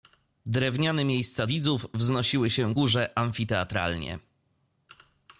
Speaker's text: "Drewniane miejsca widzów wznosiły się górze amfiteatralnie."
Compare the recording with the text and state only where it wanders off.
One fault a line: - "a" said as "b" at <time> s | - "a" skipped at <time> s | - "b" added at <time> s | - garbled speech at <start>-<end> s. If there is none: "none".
none